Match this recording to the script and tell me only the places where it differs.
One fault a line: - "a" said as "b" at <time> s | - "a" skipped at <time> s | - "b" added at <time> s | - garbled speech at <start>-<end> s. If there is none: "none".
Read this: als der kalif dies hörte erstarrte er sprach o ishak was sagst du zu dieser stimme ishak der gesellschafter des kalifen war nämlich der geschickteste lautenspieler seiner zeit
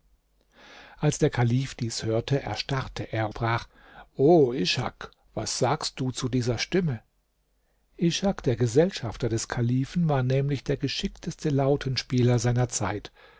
none